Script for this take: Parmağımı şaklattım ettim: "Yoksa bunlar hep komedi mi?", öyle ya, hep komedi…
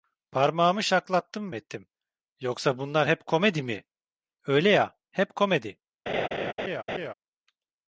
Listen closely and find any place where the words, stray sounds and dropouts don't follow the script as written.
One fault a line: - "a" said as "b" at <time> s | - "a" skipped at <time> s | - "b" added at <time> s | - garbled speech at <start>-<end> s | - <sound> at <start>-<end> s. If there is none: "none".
- laugh at 6.1-7.1 s